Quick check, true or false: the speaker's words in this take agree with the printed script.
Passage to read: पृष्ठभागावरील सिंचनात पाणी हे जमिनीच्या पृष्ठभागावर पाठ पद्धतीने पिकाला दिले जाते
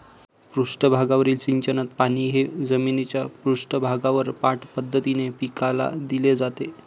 true